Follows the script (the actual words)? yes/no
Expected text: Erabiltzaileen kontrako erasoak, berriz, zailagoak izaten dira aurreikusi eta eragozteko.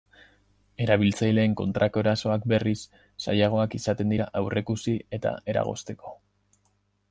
yes